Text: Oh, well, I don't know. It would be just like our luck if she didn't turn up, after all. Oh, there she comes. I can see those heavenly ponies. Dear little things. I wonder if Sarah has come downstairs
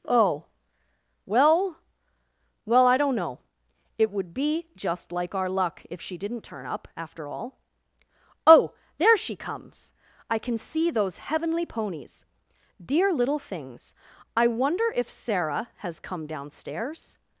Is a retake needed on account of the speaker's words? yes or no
yes